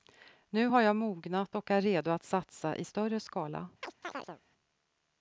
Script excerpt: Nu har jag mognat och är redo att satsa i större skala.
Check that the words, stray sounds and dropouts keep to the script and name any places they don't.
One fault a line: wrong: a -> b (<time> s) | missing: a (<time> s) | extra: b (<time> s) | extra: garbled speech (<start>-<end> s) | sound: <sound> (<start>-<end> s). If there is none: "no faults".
sound: chirp (3.8-4.4 s)